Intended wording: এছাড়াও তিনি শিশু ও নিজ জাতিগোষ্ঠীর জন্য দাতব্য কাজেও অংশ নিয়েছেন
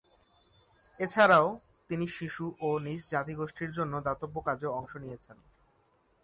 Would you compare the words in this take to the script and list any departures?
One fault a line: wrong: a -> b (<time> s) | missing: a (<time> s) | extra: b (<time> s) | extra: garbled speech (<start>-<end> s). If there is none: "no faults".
no faults